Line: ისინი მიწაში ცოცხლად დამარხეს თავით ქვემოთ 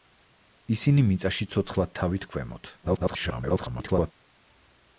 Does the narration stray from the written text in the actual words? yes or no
yes